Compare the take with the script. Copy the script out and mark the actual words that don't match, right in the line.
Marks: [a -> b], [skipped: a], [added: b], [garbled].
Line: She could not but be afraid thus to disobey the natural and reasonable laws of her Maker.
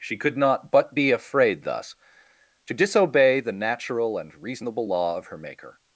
She could not but be afraid thus to disobey the natural and reasonable [laws -> law] of her Maker.